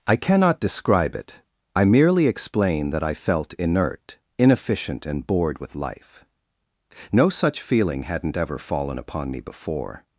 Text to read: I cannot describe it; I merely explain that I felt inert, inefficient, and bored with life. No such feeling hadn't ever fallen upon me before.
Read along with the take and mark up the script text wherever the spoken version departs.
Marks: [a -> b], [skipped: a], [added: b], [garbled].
I cannot describe it; I merely explain that I felt inert, inefficient, and bored with life. No such feeling hadn't ever fallen upon me before.